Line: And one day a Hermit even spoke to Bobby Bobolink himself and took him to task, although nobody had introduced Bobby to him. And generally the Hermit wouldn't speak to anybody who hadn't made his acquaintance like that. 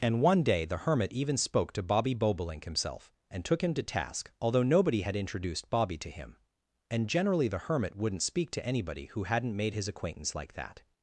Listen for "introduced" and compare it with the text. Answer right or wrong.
right